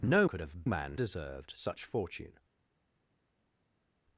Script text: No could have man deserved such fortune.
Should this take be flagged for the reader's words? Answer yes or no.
no